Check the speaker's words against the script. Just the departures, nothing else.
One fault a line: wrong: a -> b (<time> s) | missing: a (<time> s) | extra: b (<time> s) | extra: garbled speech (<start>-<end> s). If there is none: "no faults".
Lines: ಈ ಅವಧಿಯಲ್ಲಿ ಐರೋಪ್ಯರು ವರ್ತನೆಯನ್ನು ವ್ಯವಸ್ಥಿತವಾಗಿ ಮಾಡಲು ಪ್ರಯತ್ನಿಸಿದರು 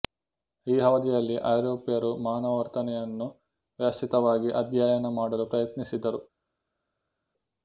extra: ಮಾನವ (2.2 s)
extra: ಅಧ್ಯಯನ (4.6 s)